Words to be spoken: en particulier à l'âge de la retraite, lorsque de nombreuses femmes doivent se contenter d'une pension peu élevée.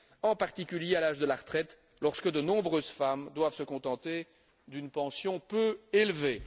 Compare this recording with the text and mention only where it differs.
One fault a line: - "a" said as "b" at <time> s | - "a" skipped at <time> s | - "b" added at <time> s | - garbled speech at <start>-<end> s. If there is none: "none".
none